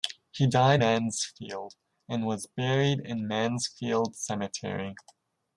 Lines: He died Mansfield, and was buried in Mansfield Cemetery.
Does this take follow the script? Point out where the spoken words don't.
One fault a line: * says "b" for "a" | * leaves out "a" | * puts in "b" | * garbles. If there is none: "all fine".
all fine